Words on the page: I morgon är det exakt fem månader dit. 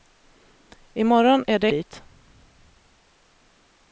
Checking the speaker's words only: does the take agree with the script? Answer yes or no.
no